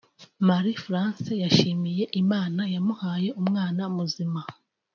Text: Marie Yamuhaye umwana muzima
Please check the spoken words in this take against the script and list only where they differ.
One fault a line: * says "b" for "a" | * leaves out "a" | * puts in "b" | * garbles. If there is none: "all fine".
* puts in "France yashimiye Imana"